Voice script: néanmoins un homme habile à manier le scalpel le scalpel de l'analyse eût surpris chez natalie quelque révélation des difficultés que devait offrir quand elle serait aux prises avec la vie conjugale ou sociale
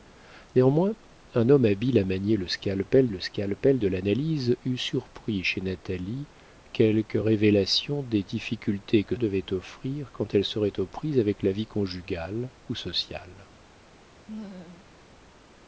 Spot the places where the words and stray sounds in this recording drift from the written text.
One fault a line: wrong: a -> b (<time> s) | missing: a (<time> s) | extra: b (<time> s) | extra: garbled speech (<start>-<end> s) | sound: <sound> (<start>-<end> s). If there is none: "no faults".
sound: laugh (14.3-14.9 s)